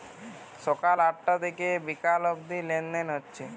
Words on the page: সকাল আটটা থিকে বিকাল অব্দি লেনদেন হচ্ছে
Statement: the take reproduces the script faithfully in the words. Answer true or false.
true